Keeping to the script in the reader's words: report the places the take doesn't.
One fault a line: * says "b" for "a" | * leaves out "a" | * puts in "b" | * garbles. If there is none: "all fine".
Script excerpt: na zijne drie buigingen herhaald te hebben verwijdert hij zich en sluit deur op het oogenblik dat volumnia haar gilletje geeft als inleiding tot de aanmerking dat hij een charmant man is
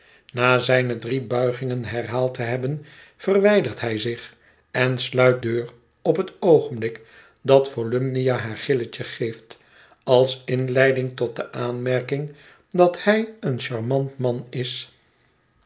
all fine